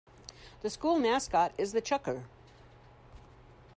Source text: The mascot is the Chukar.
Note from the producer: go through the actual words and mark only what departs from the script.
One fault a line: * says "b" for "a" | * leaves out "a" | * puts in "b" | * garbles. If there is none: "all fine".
* puts in "school"